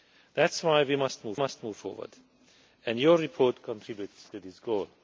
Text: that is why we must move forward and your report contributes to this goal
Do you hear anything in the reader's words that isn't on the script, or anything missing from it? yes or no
yes